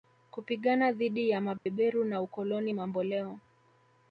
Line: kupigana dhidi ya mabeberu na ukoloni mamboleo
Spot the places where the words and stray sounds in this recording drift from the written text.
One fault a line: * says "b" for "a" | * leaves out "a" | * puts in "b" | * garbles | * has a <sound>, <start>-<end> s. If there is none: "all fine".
* has a dropout, 1.6-1.7 s